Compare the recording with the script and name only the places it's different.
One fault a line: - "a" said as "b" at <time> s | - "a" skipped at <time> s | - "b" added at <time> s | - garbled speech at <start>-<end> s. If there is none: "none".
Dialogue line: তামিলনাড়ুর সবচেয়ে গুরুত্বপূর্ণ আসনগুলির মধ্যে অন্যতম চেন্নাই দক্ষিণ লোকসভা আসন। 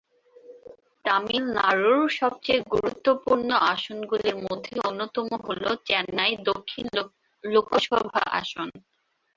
- "হল" added at 5.5 s